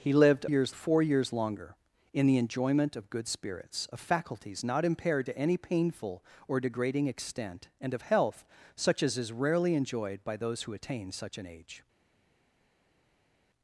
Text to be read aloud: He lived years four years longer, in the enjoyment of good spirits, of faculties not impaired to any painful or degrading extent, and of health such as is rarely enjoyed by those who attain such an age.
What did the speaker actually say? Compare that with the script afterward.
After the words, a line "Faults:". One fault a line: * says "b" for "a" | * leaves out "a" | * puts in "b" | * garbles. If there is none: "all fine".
He lived years four years longer, in the enjoyment of good spirits, of faculties not impaired to any painful or degrading extent, and of health such as is rarely enjoyed by those who attain such an age.
Faults:
all fine